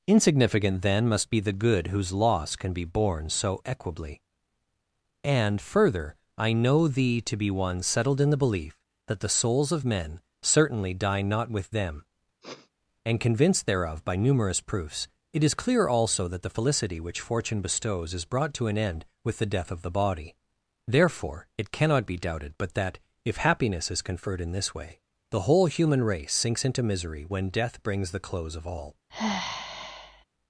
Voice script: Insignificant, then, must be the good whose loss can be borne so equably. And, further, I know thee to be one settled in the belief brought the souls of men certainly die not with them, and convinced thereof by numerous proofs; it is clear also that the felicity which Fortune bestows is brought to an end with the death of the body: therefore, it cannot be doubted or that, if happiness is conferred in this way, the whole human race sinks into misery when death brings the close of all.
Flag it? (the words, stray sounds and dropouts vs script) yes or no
yes